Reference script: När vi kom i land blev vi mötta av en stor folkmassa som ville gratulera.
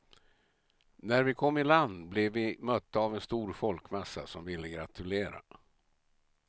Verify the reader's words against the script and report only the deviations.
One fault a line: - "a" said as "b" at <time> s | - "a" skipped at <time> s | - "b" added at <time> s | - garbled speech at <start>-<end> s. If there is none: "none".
none